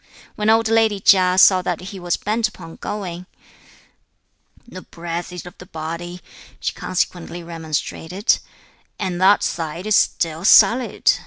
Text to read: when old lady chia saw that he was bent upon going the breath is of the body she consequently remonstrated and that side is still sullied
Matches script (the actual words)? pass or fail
pass